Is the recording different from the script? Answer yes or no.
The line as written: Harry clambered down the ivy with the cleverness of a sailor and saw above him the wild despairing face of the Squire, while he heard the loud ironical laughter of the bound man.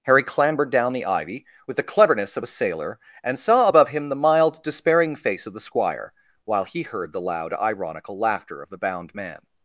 yes